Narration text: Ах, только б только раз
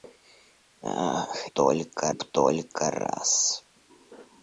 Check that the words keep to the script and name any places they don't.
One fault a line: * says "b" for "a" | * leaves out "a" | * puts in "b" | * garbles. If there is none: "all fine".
all fine